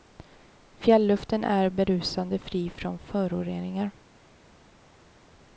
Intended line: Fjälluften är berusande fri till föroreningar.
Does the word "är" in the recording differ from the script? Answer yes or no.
no